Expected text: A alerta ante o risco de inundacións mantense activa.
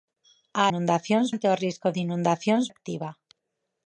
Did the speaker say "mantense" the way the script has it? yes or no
no